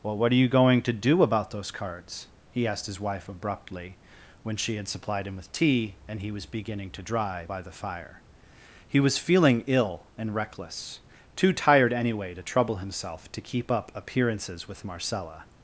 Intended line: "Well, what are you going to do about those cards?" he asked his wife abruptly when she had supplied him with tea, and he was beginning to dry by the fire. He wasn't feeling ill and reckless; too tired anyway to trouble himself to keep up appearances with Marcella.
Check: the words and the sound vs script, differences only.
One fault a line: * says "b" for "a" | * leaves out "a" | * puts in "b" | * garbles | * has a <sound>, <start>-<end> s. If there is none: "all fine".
* says "was" for "wasn't"